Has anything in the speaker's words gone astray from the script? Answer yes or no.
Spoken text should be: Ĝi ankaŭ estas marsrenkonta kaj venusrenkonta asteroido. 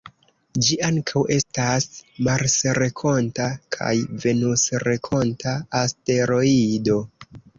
no